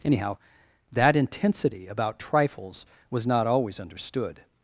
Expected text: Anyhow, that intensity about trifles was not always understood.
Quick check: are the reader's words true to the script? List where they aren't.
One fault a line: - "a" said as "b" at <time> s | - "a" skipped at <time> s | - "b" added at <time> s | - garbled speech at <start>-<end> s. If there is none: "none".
none